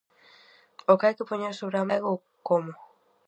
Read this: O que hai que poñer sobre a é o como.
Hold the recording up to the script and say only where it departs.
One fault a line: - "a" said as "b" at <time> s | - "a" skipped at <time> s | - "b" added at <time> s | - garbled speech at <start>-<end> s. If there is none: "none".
none